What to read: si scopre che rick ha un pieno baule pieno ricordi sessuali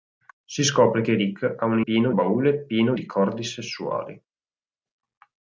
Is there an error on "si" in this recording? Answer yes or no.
no